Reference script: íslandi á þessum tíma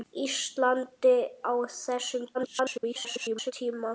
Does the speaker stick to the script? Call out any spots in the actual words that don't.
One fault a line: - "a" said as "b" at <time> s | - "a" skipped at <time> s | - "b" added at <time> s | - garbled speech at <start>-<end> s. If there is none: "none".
- garbled speech at 2.3-3.5 s